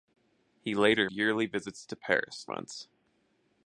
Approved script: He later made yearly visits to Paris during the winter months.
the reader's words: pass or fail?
fail